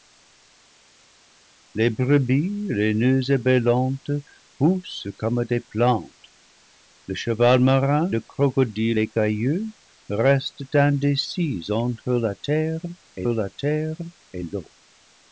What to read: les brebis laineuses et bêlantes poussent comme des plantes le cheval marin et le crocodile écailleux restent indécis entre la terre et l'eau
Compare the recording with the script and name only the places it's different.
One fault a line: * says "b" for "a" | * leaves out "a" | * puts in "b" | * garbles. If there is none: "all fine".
* leaves out "et"
* puts in "la terre et"